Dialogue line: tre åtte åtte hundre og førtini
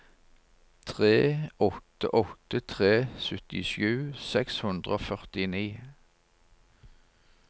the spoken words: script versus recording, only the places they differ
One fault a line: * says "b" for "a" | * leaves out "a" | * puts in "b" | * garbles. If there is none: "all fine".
* puts in "tre syttisju seks"